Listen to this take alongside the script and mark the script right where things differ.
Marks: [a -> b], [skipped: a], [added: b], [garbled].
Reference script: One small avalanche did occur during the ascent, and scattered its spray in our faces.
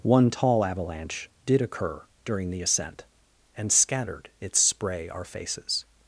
One [small -> tall] avalanche did occur during the ascent, and scattered its spray [skipped: in] our faces.